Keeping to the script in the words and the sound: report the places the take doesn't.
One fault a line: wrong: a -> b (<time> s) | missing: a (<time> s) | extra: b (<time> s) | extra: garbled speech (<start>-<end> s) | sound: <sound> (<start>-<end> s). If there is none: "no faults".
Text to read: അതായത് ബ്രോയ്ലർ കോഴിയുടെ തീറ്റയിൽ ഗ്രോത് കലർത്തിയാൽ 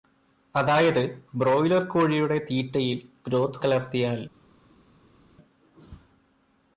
no faults